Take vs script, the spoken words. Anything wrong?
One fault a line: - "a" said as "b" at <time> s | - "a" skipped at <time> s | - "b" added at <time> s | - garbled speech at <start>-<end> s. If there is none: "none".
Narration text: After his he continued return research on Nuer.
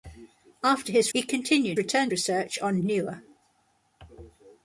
none